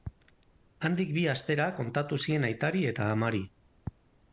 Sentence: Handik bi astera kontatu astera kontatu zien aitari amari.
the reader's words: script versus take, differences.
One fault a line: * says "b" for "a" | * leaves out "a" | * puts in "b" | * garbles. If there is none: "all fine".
* leaves out "astera kontatu"
* puts in "eta"